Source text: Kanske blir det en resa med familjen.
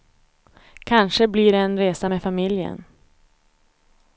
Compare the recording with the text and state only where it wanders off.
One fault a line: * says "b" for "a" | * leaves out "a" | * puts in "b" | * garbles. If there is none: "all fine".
all fine